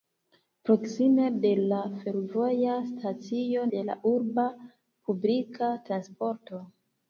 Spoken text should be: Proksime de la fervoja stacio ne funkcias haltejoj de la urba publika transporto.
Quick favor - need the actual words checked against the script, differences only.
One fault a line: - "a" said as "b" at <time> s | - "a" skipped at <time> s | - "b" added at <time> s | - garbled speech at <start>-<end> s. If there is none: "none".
- "ne funkcias haltejoj" skipped at 3.7 s